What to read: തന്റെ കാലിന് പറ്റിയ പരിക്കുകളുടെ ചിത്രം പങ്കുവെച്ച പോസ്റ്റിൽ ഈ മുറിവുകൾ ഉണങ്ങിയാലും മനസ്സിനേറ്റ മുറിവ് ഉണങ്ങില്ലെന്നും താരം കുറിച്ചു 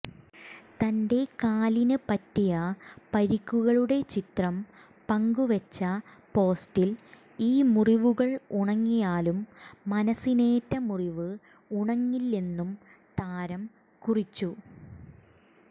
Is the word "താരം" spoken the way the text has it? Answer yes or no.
yes